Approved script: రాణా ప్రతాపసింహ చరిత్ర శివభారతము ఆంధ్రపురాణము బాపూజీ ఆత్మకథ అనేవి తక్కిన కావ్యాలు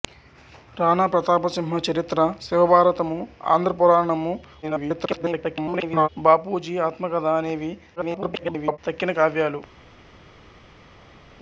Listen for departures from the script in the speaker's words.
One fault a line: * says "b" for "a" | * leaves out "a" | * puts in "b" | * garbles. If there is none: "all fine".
* garbles
* garbles